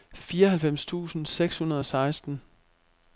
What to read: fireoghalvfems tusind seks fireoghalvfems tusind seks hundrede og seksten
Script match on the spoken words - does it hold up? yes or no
no